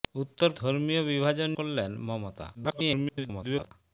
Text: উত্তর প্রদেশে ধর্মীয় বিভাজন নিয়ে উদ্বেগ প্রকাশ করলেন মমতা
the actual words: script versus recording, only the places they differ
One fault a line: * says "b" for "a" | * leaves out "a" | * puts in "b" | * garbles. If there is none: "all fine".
* leaves out "প্রদেশে"
* leaves out "নিয়ে উদ্বেগ প্রকাশ"
* garbles